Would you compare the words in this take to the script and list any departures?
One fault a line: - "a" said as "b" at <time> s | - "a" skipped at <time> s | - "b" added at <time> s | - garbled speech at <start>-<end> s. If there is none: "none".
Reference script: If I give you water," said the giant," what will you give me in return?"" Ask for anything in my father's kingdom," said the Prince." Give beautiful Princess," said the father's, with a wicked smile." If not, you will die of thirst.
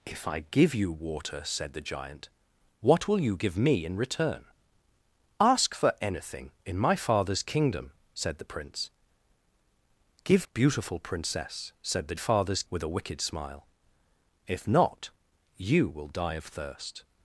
none